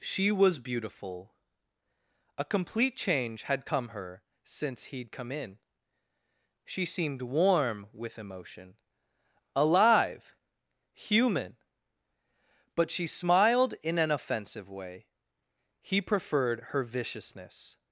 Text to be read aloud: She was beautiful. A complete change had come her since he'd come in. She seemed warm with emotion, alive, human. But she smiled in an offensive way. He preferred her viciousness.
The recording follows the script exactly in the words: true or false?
true